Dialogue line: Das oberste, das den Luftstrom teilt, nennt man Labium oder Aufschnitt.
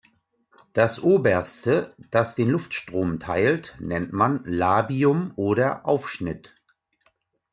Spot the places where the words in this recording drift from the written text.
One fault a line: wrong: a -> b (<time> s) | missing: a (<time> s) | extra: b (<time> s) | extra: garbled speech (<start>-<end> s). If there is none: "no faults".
no faults